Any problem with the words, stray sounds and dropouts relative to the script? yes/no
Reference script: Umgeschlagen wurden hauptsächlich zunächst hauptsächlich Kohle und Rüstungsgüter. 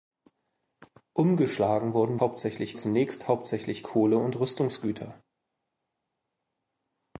no